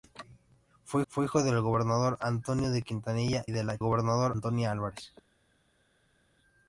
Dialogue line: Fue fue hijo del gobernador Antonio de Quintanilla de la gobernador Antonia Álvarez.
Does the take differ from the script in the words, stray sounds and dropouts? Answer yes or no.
no